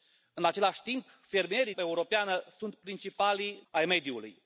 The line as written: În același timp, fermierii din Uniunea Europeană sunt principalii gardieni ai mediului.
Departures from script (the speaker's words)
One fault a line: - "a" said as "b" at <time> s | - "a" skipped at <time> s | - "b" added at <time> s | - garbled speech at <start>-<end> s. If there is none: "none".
- "din Uniunea" skipped at 1.7 s
- "gardieni" skipped at 3.6 s